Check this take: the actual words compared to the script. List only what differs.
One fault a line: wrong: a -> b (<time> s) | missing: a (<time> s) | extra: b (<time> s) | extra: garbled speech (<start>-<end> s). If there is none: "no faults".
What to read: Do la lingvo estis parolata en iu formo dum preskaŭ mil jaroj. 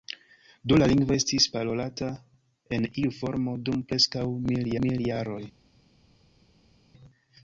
extra: mil (4.8 s)